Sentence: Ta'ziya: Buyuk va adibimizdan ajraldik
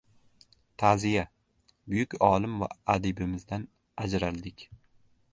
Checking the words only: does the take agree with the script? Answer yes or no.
no